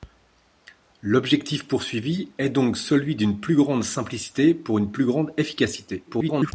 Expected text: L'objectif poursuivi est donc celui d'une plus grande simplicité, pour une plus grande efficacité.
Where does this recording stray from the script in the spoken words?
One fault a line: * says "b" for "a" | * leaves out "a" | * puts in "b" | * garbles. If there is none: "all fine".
* garbles